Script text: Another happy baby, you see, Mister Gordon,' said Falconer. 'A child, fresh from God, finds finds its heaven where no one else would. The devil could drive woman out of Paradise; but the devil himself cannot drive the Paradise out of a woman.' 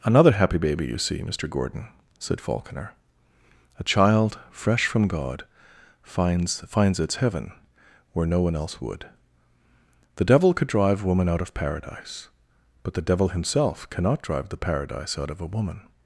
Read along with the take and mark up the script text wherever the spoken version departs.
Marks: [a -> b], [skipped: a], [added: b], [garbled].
Another happy baby, you see, Mister Gordon,' said Falconer. 'A child, fresh from God, finds finds its heaven where no one else would. The devil could drive woman out of Paradise; but the devil himself cannot drive the Paradise out of a woman.'